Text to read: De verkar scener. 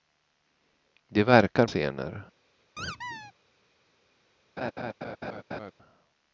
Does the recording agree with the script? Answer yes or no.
yes